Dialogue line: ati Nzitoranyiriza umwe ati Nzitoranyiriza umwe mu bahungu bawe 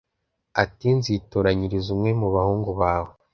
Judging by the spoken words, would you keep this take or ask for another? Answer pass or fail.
fail